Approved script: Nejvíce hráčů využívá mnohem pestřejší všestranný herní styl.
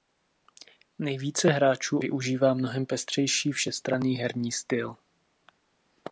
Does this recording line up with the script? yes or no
yes